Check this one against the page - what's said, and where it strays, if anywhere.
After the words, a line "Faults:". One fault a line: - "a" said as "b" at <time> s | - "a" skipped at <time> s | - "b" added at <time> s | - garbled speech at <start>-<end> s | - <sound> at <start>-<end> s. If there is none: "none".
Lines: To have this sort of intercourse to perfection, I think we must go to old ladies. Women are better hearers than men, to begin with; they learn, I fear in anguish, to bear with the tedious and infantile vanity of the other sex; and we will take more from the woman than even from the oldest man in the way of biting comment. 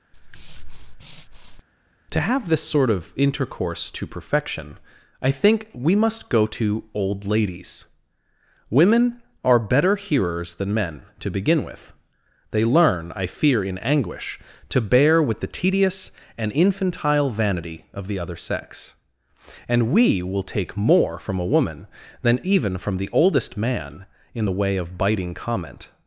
To have this sort of intercourse to perfection, I think we must go to old ladies. Women are better hearers than men, to begin with; they learn, I fear in anguish, to bear with the tedious and infantile vanity of the other sex; and we will take more from a woman than even from the oldest man in the way of biting comment.
Faults:
- breath at 0.1-1.6 s
- "the" said as "a" at 21.4 s